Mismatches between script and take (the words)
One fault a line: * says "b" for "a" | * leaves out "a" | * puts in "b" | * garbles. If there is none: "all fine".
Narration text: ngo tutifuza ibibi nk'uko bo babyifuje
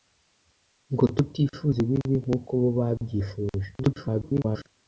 * garbles